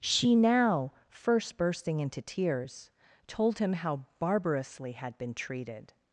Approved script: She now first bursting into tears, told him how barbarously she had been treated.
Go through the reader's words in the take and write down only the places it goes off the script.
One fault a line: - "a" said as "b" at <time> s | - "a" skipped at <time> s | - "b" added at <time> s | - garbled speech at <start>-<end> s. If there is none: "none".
- "she" skipped at 4.9 s